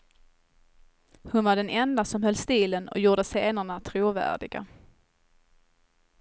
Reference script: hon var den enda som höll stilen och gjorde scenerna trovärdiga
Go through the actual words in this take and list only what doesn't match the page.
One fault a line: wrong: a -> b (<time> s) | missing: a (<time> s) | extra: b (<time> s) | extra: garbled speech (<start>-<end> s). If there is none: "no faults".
no faults